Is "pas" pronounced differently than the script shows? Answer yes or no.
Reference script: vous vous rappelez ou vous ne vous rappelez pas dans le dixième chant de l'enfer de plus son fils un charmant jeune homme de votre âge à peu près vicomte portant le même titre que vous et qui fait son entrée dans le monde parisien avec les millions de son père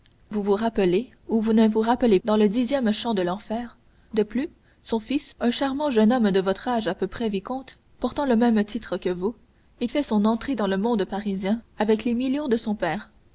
yes